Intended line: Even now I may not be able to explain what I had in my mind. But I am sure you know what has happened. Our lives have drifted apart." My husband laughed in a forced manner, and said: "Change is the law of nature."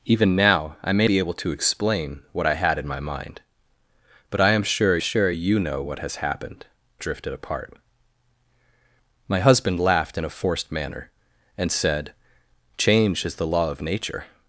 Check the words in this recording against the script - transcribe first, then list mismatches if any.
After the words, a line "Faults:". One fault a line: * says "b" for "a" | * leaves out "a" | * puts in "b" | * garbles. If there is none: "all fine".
Even now I may be able to explain what I had in my mind. But I am sure sure you know what has happened. Drifted apart." My husband laughed in a forced manner, and said: "Change is the law of nature."
Faults:
* leaves out "not"
* puts in "sure"
* leaves out "Our lives have"